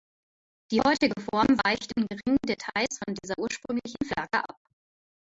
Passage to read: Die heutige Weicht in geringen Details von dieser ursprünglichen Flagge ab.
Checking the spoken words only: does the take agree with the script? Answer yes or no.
no